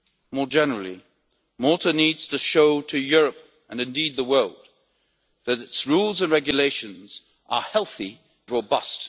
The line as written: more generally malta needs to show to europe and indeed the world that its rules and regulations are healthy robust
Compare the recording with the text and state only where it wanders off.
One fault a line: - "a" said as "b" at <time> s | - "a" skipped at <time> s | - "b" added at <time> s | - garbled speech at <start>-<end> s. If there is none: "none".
none